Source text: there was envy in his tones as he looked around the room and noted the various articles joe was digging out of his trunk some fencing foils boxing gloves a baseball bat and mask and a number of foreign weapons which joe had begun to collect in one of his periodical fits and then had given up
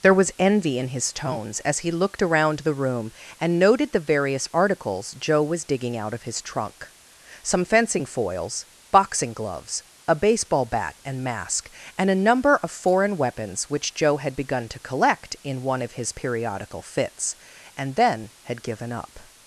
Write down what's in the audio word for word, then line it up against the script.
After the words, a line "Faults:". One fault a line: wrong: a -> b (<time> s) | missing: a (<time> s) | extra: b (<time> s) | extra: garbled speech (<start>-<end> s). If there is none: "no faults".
there was envy in his tones as he looked around the room and noted the various articles joe was digging out of his trunk some fencing foils boxing gloves a baseball bat and mask and a number of foreign weapons which joe had begun to collect in one of his periodical fits and then had given up
Faults:
no faults